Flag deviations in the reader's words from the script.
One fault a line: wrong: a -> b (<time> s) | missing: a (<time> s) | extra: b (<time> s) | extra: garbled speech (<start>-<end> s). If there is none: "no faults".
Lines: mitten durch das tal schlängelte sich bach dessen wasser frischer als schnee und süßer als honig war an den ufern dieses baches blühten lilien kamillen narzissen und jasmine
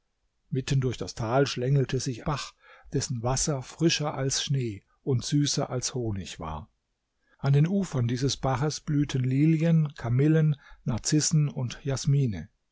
no faults